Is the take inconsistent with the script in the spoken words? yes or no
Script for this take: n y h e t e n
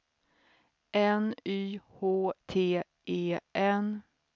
yes